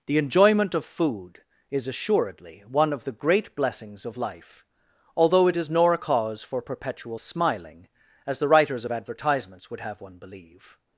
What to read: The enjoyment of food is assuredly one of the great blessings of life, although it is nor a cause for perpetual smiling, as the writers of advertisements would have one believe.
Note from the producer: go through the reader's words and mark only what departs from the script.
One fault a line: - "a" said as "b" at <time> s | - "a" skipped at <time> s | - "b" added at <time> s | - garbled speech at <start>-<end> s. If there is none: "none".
none